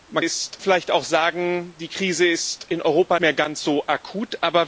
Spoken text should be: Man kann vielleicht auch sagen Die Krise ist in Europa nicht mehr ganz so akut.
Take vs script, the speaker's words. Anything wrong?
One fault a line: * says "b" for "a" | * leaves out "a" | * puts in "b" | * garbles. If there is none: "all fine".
* says "ist" for "kann"
* leaves out "nicht"